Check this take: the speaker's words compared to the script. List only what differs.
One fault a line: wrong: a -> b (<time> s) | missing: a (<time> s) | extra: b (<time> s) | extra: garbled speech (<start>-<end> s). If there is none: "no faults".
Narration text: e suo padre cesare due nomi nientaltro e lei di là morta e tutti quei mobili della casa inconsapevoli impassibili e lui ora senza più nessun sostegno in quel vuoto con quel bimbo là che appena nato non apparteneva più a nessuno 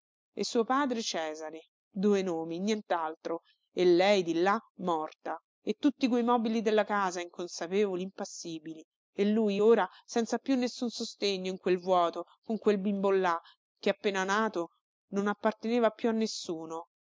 no faults